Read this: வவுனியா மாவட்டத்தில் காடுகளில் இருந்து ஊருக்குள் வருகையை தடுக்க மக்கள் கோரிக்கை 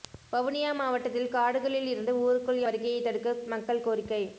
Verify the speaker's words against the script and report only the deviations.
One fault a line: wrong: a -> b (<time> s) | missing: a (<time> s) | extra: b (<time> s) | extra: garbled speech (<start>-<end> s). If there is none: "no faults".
no faults